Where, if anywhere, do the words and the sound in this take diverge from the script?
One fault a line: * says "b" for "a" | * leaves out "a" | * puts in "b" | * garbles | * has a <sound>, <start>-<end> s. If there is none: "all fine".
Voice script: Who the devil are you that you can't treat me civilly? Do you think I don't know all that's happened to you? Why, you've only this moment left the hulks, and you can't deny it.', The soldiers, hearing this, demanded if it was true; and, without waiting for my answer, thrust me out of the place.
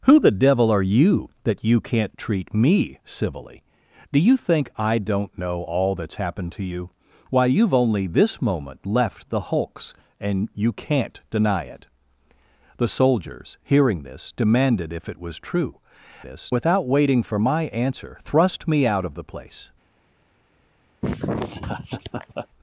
* says "this" for "and"
* has a laugh, 21.0-22.5 s